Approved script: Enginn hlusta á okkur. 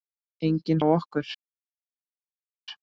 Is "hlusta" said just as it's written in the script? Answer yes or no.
no